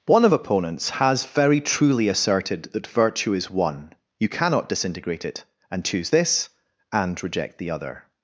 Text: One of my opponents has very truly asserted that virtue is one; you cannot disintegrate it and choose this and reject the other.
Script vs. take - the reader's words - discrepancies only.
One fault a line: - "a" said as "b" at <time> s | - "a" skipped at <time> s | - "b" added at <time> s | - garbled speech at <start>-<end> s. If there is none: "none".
- "my" skipped at 0.3 s